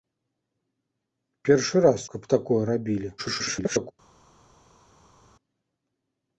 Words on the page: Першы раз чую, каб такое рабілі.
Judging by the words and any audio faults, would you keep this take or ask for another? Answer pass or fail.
fail